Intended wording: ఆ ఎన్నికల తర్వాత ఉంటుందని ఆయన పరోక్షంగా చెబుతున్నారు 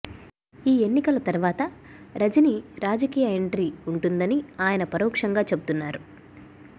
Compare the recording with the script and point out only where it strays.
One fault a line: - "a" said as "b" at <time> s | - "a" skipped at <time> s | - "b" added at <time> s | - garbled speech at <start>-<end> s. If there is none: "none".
- "ఆ" said as "ఈ" at 0.7 s
- "రజనీ రాజకీయ ఎంట్రీ" added at 2.1 s